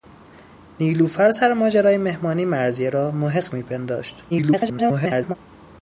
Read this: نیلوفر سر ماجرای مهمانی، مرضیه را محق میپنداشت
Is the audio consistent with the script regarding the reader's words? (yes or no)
no